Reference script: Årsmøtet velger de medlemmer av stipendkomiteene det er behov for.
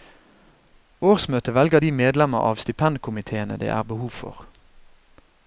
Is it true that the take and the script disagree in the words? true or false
false